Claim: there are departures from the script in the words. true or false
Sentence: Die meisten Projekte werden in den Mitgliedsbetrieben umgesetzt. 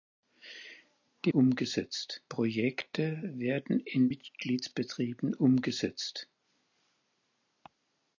true